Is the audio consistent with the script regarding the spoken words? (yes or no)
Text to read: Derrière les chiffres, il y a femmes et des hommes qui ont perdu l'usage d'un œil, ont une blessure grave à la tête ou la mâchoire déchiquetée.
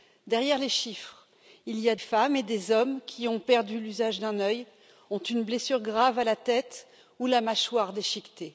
yes